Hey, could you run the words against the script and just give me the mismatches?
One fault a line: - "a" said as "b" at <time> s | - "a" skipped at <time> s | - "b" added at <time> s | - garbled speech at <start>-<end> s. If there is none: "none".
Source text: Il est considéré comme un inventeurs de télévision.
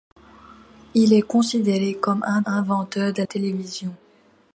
none